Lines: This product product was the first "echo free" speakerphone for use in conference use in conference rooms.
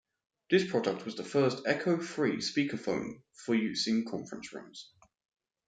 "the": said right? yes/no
yes